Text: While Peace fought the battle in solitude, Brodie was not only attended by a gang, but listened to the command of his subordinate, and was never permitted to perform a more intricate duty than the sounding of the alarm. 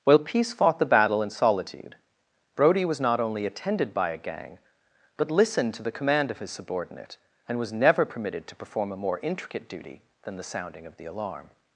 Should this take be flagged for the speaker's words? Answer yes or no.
no